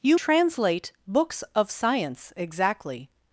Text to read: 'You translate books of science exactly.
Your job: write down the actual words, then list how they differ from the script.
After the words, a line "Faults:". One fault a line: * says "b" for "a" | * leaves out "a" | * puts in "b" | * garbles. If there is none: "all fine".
'You translate books of science exactly.
Faults:
all fine